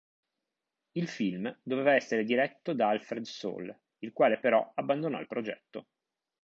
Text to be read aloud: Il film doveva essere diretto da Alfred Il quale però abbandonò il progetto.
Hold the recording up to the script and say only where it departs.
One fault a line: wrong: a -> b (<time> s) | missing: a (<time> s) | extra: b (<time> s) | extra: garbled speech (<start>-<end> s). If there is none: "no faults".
extra: Sole (3.2 s)